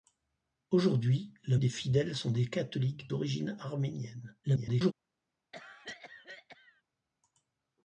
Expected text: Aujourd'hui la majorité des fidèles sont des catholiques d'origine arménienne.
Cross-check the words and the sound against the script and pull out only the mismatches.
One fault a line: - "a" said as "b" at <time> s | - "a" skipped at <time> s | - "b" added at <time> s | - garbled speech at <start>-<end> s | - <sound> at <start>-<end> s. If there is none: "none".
- "majorité" skipped at 1.6 s
- garbled speech at 4.4-4.9 s
- cough at 5.5-6.8 s